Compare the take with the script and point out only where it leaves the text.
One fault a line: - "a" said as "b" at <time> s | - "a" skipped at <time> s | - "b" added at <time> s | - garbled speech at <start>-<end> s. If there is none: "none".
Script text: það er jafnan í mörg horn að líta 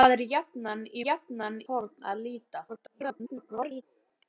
- "mörg" said as "jafnan" at 1.0 s
- garbled speech at 2.7-3.8 s